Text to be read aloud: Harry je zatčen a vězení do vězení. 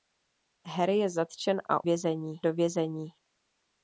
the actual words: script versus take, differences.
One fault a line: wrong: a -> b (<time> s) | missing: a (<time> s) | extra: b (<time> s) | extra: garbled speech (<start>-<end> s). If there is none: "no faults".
no faults